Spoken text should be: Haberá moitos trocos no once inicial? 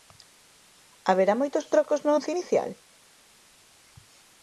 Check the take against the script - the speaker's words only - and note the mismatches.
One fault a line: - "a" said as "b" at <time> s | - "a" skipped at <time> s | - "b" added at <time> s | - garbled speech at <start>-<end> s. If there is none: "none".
none